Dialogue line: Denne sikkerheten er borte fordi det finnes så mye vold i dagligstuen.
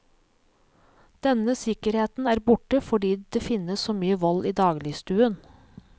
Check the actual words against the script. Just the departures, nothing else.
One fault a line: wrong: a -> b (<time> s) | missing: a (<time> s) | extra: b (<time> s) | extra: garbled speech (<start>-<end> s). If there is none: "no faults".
no faults